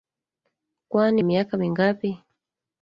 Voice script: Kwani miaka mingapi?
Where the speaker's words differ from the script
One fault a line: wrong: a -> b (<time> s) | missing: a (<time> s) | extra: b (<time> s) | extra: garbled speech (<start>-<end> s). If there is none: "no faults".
no faults